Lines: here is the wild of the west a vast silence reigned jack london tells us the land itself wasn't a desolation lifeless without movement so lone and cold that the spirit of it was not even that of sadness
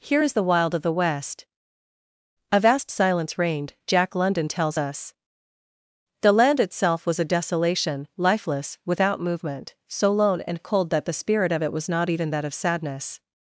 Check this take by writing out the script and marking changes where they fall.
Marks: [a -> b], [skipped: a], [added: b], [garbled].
here is the wild of the west a vast silence reigned jack london tells us the land itself [wasn't -> was] a desolation lifeless without movement so lone and cold that the spirit of it was not even that of sadness